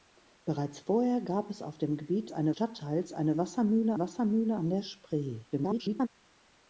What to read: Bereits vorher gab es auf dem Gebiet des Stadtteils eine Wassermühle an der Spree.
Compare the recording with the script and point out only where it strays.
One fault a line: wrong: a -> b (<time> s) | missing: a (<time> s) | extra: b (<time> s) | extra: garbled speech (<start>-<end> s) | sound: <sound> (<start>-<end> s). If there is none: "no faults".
wrong: des -> eine (2.3 s)
extra: Wassermühle (4.0 s)
extra: garbled speech (5.5-6.1 s)